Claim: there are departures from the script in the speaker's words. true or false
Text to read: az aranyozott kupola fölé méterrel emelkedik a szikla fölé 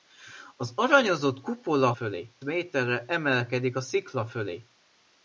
false